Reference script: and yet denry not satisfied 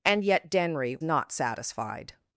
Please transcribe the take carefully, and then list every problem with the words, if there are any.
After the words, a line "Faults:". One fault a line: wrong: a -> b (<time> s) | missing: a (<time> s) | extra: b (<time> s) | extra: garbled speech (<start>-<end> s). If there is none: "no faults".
and yet denry not satisfied
Faults:
no faults